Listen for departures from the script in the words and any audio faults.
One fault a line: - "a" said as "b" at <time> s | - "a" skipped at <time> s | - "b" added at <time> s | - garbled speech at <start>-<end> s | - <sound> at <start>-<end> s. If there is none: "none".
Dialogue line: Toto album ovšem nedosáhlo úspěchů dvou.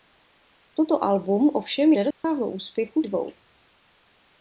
- dropout at 2.1-2.2 s